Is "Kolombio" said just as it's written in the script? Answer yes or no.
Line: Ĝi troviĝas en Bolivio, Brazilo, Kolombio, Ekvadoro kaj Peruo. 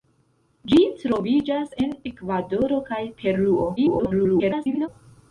no